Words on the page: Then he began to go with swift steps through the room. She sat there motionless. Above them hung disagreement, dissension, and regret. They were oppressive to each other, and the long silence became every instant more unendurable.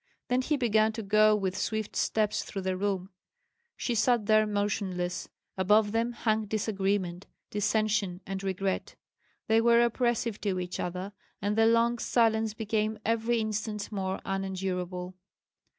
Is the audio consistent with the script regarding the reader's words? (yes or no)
yes